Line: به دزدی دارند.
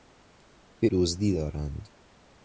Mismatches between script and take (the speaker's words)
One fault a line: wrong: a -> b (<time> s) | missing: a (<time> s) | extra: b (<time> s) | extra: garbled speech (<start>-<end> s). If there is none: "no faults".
no faults